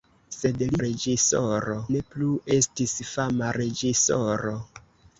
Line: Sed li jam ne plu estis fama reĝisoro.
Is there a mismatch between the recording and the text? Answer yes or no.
yes